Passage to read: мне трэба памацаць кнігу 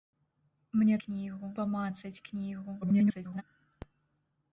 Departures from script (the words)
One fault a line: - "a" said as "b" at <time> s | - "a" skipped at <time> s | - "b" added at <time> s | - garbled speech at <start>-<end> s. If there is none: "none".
- "трэба" said as "кнігу" at 1.0 s
- garbled speech at 2.8-3.4 s